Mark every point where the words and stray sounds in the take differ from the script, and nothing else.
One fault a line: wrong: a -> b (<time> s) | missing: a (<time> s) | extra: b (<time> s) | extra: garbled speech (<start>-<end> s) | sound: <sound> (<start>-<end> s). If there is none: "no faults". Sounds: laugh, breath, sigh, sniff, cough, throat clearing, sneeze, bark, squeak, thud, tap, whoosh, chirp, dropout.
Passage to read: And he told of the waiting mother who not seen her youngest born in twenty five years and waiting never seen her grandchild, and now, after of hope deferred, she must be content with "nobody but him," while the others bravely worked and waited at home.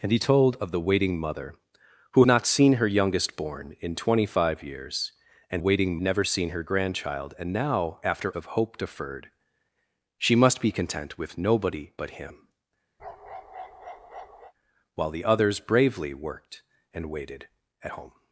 sound: bark (13.0-14.5 s)